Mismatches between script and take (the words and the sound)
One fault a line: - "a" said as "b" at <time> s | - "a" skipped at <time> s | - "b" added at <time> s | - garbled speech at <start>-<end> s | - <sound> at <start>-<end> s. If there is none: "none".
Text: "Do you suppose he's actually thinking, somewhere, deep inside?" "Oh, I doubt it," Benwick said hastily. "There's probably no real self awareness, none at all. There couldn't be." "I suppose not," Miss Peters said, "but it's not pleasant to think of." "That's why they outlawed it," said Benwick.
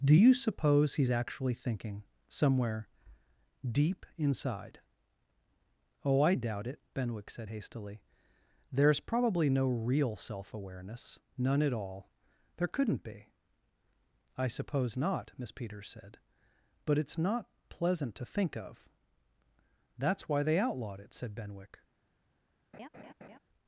- laugh at 22.7-23.4 s